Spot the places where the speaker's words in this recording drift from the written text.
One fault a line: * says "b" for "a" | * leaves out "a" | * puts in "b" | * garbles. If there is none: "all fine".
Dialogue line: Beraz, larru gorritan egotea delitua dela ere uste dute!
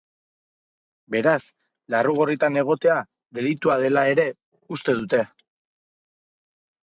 all fine